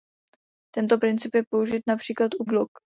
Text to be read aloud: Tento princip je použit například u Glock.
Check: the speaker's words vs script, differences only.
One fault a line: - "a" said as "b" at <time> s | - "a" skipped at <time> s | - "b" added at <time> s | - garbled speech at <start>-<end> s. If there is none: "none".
none